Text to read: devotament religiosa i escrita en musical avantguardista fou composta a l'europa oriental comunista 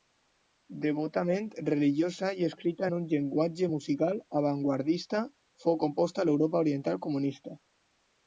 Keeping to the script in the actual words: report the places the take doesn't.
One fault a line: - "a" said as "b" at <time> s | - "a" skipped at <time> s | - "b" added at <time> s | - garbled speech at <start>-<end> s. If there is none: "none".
- "un llenguatge" added at 3.0 s